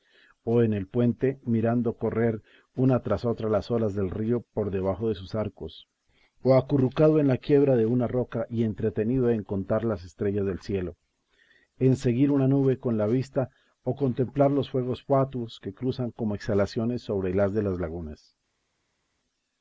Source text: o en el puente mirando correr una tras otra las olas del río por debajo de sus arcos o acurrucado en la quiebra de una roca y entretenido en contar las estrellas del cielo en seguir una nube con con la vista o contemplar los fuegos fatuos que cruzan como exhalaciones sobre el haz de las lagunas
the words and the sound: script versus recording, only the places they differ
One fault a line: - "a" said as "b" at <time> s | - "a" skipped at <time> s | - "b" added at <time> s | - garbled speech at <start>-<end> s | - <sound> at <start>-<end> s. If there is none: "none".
- "con" skipped at 13.0 s